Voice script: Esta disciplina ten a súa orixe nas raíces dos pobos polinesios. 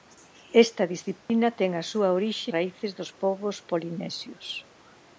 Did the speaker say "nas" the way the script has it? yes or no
no